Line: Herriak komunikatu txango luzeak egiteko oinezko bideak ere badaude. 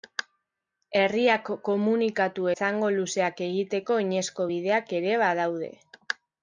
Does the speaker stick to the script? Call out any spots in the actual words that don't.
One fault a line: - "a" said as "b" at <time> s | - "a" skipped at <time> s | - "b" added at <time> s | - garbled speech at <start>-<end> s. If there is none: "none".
none